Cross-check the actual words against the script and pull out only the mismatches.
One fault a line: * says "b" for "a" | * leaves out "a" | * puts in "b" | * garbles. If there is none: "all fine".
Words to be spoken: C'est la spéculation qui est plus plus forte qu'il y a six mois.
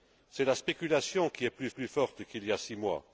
all fine